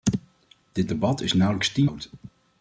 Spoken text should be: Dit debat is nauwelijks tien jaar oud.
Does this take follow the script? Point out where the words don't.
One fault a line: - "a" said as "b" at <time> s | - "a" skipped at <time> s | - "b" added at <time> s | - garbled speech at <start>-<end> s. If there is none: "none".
- "jaar" skipped at 1.9 s